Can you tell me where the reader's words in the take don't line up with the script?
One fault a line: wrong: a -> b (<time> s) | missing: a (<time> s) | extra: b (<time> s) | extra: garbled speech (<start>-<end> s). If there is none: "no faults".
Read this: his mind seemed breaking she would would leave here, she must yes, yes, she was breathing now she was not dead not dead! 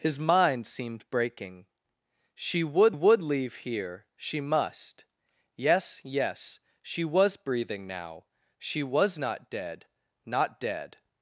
no faults